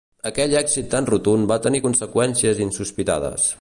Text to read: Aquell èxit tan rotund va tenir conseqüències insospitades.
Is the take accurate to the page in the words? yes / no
yes